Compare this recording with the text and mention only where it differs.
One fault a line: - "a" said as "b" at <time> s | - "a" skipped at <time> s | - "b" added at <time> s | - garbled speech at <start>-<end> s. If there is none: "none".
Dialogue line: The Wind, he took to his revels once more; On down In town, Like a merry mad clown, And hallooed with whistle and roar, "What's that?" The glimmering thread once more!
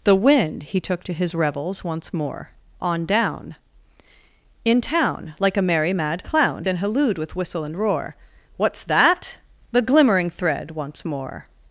none